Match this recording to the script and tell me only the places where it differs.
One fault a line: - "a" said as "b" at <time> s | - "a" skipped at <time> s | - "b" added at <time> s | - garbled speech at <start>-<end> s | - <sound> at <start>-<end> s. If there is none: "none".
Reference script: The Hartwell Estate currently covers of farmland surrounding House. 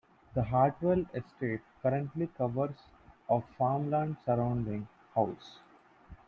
none